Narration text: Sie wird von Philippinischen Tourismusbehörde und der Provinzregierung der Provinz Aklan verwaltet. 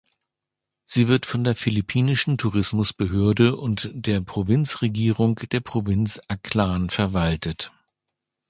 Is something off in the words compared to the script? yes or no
yes